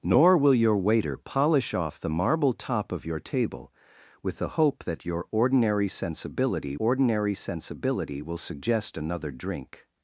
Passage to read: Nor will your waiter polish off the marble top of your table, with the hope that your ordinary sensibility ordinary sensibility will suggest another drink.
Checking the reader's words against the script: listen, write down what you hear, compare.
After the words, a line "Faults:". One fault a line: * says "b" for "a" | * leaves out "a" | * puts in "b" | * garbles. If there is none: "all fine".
Nor will your waiter polish off the marble top of your table, with the hope that your ordinary sensibility ordinary sensibility will suggest another drink.
Faults:
all fine